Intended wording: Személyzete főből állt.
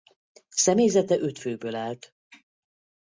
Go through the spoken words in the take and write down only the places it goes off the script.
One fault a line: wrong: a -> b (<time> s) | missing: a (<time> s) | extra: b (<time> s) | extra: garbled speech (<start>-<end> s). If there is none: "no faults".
extra: öt (1.2 s)